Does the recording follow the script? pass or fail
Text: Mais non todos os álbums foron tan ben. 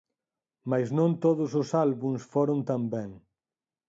pass